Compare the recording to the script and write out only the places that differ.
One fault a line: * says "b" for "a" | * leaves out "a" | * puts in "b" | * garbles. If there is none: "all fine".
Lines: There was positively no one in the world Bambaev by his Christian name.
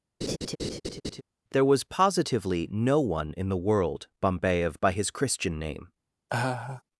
all fine